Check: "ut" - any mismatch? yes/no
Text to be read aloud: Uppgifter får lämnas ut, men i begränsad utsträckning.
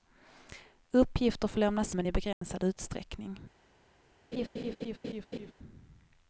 yes